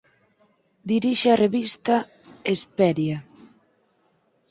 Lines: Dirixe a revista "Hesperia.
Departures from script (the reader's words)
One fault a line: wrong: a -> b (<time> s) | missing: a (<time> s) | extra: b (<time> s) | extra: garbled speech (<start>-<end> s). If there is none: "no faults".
no faults